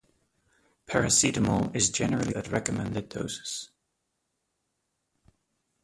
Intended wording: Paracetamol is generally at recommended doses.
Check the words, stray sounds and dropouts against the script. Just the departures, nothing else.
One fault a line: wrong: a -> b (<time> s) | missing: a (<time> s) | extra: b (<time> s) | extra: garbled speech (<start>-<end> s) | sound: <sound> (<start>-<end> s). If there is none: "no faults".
no faults